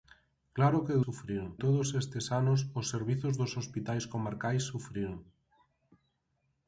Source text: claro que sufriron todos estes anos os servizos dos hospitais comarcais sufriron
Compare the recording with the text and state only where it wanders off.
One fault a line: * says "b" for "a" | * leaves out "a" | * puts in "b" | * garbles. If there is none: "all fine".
all fine